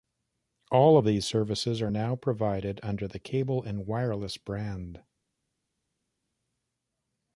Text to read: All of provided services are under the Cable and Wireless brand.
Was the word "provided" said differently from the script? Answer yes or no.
yes